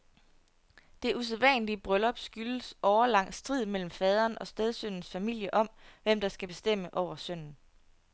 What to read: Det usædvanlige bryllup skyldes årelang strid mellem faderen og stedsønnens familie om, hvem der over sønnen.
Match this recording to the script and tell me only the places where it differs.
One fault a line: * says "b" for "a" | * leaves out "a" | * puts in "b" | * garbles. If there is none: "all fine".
* puts in "skal bestemme"